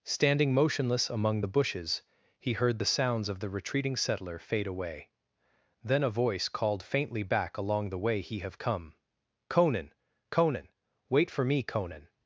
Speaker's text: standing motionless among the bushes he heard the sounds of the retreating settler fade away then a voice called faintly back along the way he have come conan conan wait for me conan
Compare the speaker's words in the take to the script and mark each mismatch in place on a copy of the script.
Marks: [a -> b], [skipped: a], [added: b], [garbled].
standing motionless among the bushes he heard the sounds of the retreating settler fade away then a voice called faintly back along the way he have come conan conan wait for me conan